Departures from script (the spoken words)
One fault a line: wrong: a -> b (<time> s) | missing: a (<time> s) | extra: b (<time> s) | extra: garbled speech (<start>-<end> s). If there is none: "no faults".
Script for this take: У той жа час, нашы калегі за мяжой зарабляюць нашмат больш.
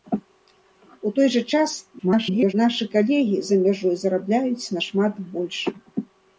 extra: garbled speech (2.0-2.5 s)